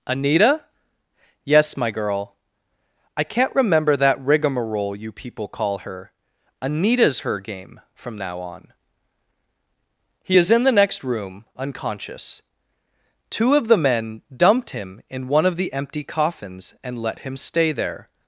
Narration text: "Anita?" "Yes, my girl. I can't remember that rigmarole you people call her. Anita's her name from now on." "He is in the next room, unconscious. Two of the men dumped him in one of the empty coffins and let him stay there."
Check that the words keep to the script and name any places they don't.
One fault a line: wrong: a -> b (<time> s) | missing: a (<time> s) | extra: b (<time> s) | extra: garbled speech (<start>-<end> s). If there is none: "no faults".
wrong: name -> game (7.4 s)